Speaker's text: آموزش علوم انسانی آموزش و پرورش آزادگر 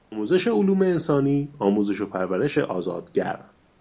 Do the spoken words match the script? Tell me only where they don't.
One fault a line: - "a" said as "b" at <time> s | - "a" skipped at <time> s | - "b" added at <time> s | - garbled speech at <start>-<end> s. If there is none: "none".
none